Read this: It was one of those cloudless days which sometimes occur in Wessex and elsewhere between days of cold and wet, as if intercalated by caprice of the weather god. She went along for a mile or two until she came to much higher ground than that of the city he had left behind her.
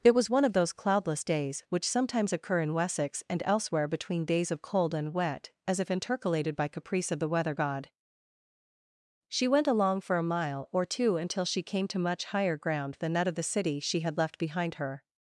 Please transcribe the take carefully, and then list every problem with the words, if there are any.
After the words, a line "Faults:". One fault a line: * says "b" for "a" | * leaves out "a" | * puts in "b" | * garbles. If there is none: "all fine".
It was one of those cloudless days which sometimes occur in Wessex and elsewhere between days of cold and wet, as if intercalated by caprice of the weather god. She went along for a mile or two until she came to much higher ground than that of the city she had left behind her.
Faults:
* says "she" for "he"